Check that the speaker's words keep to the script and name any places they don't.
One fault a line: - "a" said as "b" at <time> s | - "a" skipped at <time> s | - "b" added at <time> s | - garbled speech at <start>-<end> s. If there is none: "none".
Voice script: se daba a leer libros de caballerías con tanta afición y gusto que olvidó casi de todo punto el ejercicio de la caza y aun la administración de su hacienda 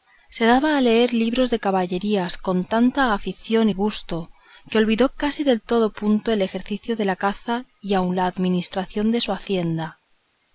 none